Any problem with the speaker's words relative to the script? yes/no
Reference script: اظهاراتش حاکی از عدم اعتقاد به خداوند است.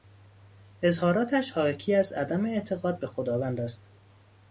no